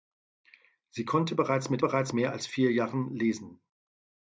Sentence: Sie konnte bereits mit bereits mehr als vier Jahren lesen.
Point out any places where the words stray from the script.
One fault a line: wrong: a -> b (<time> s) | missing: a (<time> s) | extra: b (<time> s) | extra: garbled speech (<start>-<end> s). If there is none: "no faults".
no faults